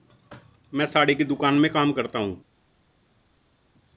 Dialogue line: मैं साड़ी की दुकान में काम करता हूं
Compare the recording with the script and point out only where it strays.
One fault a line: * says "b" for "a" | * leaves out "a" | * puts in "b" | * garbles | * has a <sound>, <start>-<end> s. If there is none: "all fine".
all fine